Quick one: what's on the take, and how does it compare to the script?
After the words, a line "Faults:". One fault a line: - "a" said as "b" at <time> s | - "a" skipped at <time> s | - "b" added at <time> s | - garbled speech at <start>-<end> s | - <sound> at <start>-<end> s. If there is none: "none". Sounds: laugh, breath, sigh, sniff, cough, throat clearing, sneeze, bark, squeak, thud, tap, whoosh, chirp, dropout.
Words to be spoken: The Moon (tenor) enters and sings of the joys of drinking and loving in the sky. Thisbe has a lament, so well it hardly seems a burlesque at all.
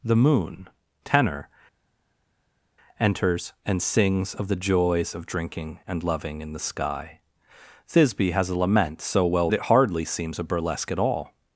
The Moon (tenor) enters and sings of the joys of drinking and loving in the sky. Thisbe has a lament, so well it hardly seems a burlesque at all.
Faults:
none